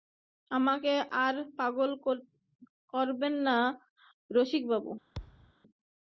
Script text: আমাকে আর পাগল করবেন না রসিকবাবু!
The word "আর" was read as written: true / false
true